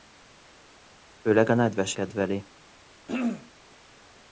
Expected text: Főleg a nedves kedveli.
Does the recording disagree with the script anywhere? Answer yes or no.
no